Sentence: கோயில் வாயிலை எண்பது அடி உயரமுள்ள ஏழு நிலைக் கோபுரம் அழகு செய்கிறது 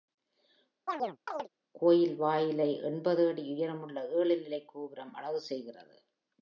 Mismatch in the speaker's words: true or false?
false